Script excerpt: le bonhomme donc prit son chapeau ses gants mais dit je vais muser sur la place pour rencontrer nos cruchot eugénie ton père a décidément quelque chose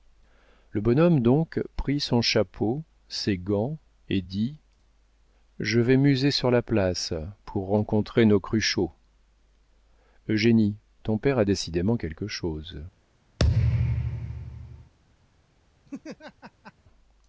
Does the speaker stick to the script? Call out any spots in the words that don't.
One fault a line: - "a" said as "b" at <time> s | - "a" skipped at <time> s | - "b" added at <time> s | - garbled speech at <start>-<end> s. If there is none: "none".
- "mais" said as "et" at 4.1 s